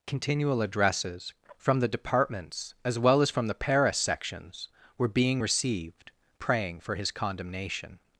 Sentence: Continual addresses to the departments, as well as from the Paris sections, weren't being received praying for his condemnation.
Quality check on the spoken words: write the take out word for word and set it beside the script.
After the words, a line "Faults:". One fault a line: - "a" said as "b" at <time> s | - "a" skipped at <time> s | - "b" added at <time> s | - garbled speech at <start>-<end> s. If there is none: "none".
Continual addresses from the departments, as well as from the Paris sections, were being received praying for his condemnation.
Faults:
- "to" said as "from" at 1.6 s
- "weren't" said as "were" at 5.0 s